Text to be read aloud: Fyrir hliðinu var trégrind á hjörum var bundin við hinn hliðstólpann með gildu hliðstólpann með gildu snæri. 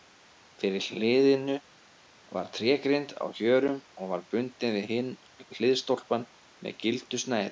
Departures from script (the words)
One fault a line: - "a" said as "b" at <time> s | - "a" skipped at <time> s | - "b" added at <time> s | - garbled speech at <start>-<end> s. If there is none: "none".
- "og" added at 4.0 s
- "hliðstólpann með gildu" skipped at 7.2 s